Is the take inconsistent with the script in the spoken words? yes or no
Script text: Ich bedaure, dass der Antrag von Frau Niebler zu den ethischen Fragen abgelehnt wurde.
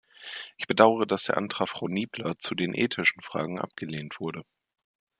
yes